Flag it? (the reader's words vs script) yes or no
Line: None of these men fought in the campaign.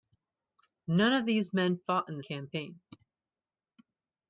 no